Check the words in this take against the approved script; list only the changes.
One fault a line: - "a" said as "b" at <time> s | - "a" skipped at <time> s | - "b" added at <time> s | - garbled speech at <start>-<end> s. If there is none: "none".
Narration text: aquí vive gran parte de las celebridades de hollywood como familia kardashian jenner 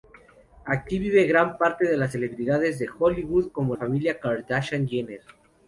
none